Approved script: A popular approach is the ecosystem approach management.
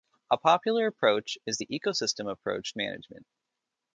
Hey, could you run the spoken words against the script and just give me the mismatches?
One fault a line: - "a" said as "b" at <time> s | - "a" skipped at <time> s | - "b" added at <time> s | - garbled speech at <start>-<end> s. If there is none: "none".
none